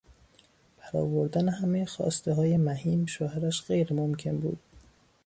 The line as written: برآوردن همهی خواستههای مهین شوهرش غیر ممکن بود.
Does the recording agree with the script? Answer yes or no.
yes